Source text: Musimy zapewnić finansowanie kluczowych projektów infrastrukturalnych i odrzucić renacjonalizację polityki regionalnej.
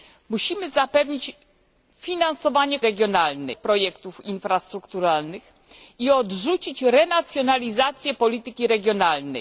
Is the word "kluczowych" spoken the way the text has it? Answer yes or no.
no